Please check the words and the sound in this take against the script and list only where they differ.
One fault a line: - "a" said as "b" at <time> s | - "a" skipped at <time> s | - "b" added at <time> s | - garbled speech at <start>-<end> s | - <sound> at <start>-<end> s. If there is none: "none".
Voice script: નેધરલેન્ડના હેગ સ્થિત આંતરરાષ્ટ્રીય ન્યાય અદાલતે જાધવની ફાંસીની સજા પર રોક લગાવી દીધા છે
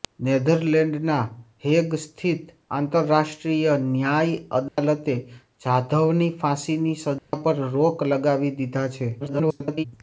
- dropout at 4.7-4.8 s
- dropout at 7.2-7.3 s
- garbled speech at 9.2-9.8 s